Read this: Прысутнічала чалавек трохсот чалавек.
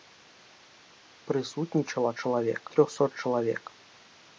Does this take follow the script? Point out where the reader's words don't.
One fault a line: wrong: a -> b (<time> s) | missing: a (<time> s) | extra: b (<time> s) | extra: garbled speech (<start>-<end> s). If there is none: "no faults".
no faults